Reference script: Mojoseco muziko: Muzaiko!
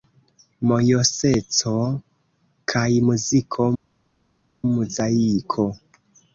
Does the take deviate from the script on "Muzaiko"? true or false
false